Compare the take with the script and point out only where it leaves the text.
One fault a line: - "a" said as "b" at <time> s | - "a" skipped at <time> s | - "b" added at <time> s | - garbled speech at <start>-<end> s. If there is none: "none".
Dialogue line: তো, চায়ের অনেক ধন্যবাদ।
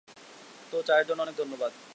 - "জন্য" added at 1.1 s